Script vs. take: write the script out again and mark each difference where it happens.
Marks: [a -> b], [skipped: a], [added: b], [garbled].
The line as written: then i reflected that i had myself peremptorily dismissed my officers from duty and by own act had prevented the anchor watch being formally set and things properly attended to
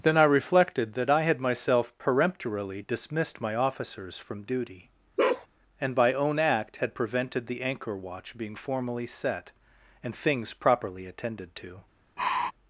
then i reflected that i had myself peremptorily dismissed my officers from duty and by own act had prevented the anchor watch being formally set and things properly attended to